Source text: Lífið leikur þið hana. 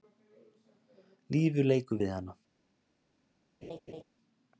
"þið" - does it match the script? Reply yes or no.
no